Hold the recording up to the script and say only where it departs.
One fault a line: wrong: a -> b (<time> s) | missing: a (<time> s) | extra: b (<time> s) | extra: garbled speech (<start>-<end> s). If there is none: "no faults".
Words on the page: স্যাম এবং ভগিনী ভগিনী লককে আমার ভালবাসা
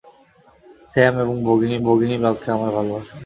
no faults